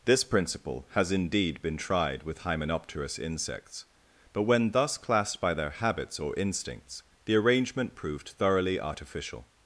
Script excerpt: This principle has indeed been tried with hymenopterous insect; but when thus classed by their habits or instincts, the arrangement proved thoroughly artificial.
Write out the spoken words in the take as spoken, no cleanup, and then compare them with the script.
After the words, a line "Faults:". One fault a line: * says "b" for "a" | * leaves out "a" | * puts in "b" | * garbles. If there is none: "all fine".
This principle has indeed been tried with hymenopterous insects; but when thus classed by their habits or instincts, the arrangement proved thoroughly artificial.
Faults:
* says "insects" for "insect"